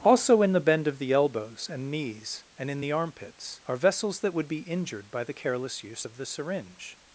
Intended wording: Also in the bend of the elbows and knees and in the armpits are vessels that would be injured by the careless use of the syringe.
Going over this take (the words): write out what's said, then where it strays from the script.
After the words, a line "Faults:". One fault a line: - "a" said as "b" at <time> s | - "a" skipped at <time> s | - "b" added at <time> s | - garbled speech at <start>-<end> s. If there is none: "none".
Also in the bend of the elbows and knees and in the armpits are vessels that would be injured by the careless use of the syringe.
Faults:
none